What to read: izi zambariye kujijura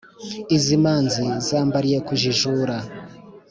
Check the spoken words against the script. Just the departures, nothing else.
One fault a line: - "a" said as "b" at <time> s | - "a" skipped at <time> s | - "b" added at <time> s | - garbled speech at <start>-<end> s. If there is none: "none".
- "manzi" added at 0.8 s